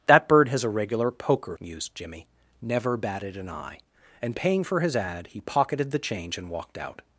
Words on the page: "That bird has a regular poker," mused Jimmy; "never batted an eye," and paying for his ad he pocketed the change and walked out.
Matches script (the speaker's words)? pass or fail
pass